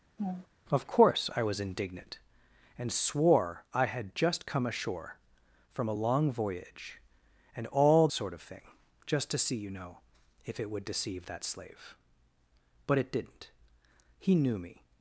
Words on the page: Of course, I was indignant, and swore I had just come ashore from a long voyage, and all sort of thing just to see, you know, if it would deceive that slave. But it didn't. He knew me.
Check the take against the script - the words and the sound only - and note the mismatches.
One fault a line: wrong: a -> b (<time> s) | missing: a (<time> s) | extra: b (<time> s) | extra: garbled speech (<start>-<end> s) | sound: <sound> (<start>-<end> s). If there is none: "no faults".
sound: laugh (0.2-0.5 s)